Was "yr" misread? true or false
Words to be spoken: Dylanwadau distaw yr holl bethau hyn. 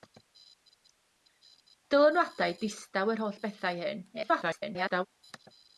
false